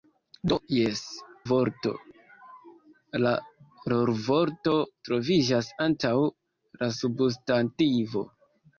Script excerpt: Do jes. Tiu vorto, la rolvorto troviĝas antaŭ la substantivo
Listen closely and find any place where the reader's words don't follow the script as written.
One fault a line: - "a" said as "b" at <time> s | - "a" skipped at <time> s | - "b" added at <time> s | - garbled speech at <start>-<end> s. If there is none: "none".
- "Tiu" skipped at 1.0 s